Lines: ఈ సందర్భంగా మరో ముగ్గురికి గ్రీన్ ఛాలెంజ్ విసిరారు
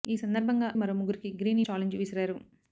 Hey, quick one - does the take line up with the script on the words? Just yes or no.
yes